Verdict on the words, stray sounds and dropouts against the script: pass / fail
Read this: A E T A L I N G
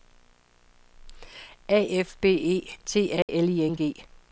fail